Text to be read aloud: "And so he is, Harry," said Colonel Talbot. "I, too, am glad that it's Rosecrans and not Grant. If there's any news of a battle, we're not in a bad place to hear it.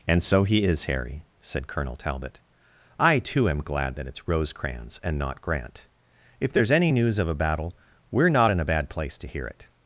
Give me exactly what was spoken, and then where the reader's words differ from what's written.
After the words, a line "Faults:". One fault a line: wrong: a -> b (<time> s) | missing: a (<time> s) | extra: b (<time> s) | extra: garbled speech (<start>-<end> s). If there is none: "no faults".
"And so he is, Harry," said Colonel Talbot. "I, too, am glad that it's Rosecrans and not Grant. If there's any news of a battle, we're not in a bad place to hear it.
Faults:
no faults